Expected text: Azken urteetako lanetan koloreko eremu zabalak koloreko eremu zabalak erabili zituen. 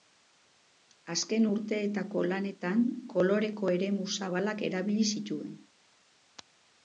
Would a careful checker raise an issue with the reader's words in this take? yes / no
yes